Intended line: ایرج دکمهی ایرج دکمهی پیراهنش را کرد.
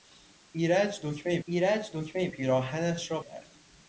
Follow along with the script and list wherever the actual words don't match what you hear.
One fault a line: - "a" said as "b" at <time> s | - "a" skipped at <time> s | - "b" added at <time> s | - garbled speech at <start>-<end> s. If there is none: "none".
none